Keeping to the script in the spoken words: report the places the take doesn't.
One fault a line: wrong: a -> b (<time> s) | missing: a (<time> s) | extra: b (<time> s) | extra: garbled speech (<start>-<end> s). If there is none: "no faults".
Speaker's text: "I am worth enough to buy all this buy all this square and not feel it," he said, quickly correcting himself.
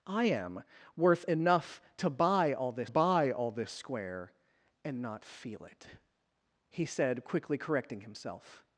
no faults